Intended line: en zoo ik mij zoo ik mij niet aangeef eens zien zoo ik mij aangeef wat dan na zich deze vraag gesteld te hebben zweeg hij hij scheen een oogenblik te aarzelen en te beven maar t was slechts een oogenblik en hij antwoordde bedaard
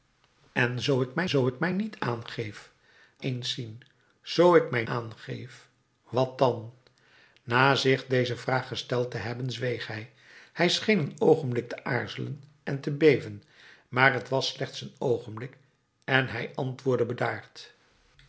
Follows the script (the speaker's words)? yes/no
yes